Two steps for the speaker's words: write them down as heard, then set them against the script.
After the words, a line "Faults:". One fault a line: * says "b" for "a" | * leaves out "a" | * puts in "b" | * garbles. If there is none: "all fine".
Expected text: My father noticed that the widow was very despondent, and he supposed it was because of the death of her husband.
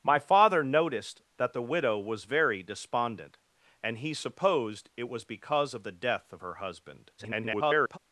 My father noticed that the widow was very despondent, and he supposed it was because of the death of her husband. [garbled]
Faults:
* garbles